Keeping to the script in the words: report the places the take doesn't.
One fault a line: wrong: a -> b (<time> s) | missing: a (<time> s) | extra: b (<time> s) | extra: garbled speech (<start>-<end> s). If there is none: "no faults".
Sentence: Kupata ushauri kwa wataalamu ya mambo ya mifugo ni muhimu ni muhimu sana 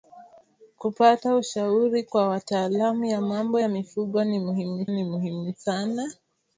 no faults